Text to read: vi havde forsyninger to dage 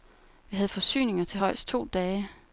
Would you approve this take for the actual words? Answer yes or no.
no